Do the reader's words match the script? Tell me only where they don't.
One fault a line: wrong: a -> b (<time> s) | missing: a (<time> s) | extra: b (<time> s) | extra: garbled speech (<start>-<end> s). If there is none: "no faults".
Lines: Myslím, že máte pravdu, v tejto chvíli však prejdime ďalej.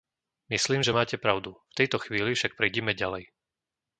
no faults